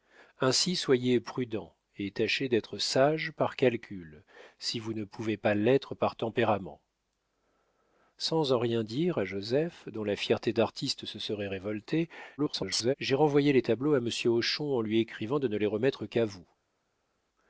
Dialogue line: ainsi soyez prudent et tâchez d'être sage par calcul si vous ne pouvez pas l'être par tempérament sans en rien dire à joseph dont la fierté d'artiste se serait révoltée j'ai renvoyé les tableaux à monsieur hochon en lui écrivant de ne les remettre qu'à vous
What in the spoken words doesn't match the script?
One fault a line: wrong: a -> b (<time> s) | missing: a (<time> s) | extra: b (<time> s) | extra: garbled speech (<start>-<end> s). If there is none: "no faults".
extra: garbled speech (12.4-12.9 s)